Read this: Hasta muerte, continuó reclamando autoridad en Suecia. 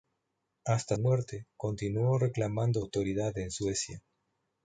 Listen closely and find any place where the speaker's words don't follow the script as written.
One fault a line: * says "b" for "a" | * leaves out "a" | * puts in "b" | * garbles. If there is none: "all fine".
all fine